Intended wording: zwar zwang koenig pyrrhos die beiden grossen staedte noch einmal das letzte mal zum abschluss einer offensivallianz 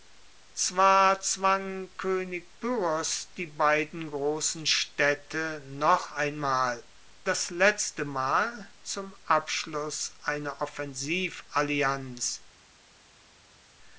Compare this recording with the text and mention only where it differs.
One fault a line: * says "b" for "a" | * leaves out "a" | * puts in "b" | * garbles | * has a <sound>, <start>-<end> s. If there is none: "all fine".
all fine